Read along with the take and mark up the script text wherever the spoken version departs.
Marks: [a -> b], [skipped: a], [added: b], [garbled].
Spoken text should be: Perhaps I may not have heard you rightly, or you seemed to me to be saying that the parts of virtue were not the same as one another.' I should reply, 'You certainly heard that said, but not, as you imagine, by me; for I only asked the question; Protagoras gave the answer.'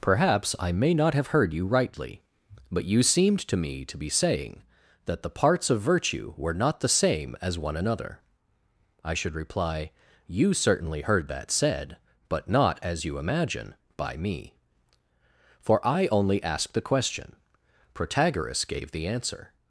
Perhaps I may not have heard you rightly, [or -> but] you seemed to me to be saying that the parts of virtue were not the same as one another.' I should reply, 'You certainly heard that said, but not, as you imagine, by me; for I only asked the question; Protagoras gave the answer.'